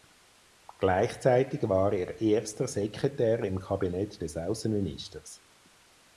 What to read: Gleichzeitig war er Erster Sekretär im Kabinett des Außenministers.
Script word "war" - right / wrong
right